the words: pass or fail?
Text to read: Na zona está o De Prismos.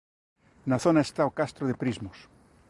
fail